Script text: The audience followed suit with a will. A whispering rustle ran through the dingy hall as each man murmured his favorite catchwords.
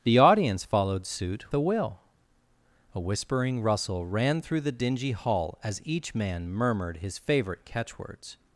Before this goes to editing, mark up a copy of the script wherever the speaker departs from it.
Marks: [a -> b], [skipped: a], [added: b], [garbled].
The audience followed suit [skipped: with] a will. A whispering rustle ran through the dingy hall as each man murmured his favorite catchwords.